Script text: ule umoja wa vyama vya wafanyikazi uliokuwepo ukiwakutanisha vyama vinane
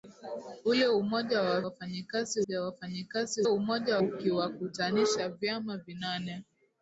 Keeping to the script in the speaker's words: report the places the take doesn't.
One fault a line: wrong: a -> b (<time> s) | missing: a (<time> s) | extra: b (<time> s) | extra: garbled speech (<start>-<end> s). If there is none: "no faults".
wrong: vyama -> wafanyikazi (1.6 s)
wrong: uliokuwepo -> umoja (3.4 s)